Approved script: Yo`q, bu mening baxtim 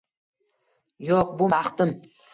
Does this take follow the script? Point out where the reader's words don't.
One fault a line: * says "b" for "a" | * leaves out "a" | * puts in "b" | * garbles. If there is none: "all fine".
* leaves out "mening"